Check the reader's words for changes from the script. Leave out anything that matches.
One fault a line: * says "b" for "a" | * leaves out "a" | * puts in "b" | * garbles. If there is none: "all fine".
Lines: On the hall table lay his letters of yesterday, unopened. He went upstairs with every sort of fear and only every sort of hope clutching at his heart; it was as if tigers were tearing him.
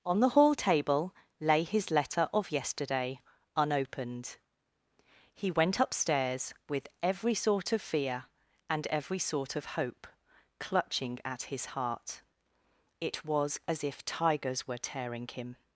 * says "letter" for "letters"
* leaves out "only"